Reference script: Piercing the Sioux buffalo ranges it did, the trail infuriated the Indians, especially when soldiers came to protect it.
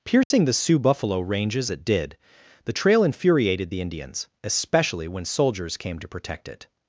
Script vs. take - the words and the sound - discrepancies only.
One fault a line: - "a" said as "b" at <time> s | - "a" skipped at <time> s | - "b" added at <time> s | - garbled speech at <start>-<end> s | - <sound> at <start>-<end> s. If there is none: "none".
- dropout at 0.2-0.3 s